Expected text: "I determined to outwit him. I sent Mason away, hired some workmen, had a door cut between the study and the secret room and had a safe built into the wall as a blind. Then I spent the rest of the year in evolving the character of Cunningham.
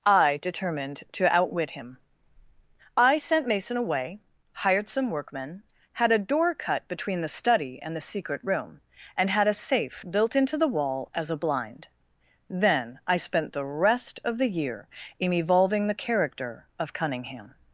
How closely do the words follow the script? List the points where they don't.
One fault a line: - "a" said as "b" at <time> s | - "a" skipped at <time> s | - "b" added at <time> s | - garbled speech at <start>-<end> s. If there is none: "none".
none